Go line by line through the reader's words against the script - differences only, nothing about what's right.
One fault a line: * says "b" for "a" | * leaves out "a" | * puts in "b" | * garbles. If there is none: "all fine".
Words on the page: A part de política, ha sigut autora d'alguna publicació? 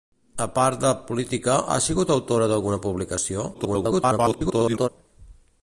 * garbles